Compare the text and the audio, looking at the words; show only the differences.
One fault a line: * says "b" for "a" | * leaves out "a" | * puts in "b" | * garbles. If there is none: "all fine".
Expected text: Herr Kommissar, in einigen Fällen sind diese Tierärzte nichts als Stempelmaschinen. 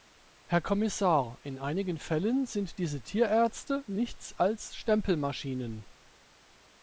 all fine